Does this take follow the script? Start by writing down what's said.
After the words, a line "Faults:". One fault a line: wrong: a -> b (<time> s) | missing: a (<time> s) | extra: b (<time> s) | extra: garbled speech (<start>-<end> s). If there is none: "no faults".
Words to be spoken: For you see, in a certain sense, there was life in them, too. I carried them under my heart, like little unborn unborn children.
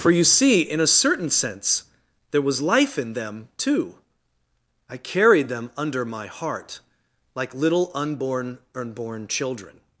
For you see, in a certain sense, there was life in them, too. I carried them under my heart, like little unborn unborn children.
Faults:
no faults